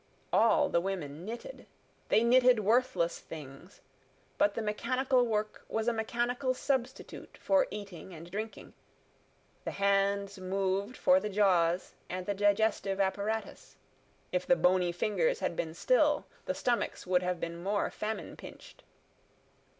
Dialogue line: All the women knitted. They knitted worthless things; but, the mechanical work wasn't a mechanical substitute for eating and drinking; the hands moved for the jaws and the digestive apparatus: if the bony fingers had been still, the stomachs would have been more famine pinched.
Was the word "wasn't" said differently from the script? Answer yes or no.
yes